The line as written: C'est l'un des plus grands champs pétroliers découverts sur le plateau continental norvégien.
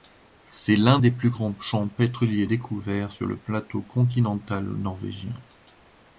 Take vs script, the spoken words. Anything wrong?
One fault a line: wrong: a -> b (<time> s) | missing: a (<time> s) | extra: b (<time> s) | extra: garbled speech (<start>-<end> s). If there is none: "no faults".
no faults